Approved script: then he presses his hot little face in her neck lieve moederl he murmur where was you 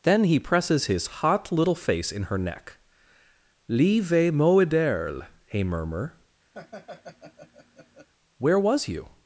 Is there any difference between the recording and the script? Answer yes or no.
no